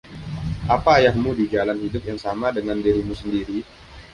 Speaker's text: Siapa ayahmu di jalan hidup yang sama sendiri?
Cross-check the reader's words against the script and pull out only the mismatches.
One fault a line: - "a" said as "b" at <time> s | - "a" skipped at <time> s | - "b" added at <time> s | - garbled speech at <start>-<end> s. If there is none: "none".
- "Siapa" said as "Apa" at 0.7 s
- "dengan dirimu" added at 2.5 s